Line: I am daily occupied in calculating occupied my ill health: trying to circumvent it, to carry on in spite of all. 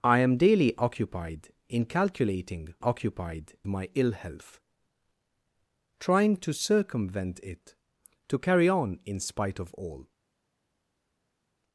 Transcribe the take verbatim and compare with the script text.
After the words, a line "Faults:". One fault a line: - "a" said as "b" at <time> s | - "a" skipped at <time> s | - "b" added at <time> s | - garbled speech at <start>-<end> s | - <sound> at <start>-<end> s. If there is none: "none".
I am daily occupied in calculating occupied my ill health: trying to circumvent it, to carry on in spite of all.
Faults:
none